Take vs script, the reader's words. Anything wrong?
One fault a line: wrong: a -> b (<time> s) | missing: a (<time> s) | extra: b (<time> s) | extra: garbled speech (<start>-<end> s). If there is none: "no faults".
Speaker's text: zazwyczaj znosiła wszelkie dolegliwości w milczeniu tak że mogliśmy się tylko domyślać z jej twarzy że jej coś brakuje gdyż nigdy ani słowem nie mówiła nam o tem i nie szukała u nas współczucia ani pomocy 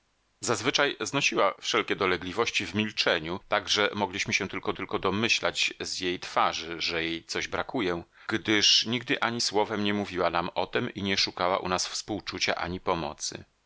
extra: tylko (4.7 s)